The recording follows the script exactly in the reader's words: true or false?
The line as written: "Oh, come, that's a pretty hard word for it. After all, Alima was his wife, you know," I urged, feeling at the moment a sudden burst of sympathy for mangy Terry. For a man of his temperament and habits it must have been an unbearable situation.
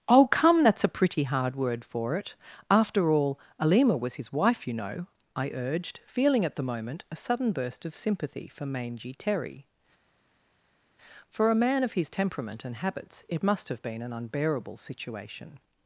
true